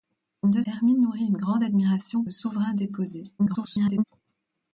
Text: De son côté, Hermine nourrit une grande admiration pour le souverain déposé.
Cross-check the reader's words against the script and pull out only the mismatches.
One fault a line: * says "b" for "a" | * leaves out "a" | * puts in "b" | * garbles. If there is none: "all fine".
* leaves out "son côté"
* leaves out "pour"
* garbles